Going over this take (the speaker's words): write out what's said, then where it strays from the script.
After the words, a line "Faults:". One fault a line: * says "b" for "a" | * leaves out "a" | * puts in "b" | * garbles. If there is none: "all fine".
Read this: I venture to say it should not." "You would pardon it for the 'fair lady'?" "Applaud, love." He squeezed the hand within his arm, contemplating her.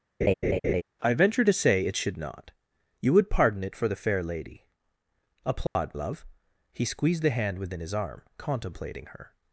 I venture to say it should not." "You would pardon it for the 'fair lady'?" "Applaud, love." He squeezed the hand within his arm, contemplating her.
Faults:
all fine